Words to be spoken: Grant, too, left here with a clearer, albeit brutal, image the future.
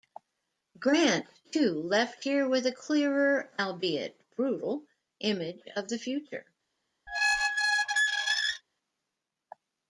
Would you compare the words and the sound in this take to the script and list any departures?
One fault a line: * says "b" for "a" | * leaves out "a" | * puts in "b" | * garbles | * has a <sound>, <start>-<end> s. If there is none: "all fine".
* puts in "of"
* has a squeak, 7.1-8.6 s